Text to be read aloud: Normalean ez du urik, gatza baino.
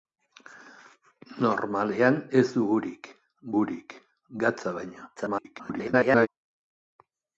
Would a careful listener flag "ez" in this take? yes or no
no